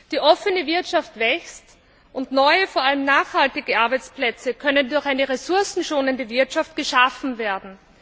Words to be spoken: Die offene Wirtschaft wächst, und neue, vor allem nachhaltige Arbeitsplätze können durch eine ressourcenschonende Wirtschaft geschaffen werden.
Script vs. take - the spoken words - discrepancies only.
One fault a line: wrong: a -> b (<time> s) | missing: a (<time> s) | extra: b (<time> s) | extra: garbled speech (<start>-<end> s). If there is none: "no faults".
no faults